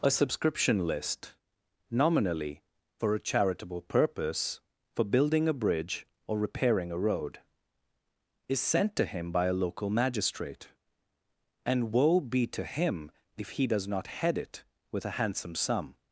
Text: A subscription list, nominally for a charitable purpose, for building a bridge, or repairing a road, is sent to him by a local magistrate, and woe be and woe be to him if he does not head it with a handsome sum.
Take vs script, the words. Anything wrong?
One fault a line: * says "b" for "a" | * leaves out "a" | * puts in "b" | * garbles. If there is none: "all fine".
* leaves out "and woe be"